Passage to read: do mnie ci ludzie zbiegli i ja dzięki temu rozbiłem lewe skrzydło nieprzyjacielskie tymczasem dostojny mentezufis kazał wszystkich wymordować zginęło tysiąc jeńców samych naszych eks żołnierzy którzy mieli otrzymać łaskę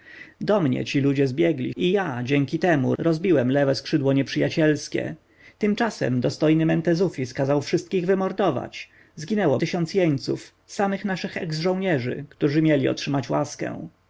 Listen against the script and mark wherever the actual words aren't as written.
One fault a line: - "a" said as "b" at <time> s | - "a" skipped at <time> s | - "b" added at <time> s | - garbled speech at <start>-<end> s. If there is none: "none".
none